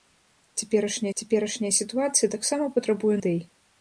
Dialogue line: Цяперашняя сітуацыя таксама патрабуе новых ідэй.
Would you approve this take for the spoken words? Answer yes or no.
no